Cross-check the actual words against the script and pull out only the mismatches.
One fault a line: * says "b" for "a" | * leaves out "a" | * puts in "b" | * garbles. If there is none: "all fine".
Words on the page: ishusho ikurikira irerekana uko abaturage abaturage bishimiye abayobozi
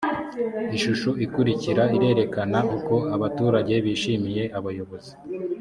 * leaves out "abaturage"